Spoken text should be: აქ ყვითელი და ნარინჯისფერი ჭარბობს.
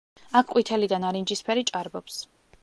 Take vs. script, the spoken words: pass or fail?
pass